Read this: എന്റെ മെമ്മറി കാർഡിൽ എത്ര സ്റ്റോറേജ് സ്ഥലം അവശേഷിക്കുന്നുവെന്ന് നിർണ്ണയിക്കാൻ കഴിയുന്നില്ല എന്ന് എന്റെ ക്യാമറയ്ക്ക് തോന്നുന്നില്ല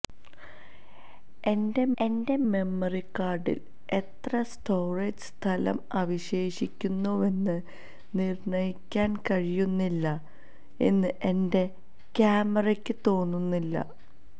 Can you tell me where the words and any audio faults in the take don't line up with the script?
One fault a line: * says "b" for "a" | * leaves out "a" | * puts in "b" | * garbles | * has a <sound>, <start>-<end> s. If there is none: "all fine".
* puts in "എന്റെ"